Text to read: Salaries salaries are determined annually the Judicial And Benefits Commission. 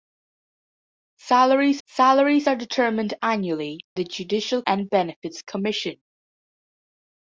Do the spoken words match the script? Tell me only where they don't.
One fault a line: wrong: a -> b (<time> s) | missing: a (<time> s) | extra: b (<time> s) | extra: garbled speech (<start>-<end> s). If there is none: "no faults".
no faults